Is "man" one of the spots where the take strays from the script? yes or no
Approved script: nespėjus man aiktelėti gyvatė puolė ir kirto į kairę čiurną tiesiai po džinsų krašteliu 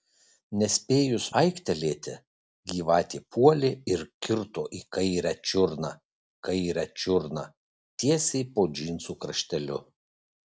yes